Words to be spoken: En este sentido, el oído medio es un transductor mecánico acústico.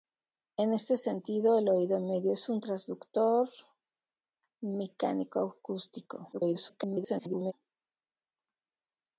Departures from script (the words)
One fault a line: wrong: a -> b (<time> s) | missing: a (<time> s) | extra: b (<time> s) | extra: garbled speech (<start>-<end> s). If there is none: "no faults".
extra: garbled speech (6.3-7.5 s)